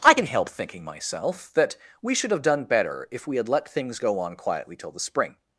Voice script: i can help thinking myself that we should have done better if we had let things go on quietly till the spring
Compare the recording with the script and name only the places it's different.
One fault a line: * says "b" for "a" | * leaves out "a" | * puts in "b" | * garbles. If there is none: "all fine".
all fine